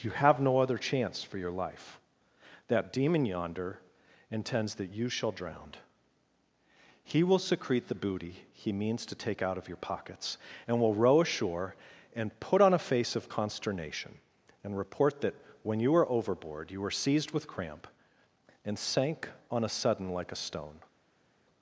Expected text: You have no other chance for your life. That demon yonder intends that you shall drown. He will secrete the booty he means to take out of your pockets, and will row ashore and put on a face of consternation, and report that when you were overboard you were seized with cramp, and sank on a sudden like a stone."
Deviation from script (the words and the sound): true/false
false